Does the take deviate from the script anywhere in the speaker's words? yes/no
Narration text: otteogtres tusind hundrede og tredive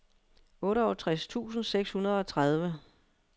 yes